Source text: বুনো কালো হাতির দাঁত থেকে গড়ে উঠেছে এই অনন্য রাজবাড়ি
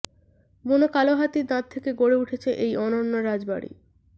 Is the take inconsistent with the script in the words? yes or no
no